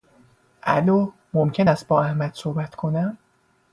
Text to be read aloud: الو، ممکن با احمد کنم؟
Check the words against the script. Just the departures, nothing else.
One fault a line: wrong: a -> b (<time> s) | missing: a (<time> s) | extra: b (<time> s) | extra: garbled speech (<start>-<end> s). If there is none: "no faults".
extra: است (1.7 s)
extra: صحبت (2.3 s)